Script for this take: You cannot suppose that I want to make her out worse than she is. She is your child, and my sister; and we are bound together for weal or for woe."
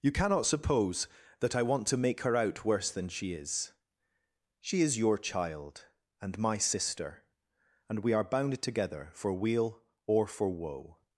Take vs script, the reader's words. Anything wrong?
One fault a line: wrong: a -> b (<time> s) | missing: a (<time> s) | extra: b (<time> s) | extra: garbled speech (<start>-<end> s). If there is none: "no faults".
no faults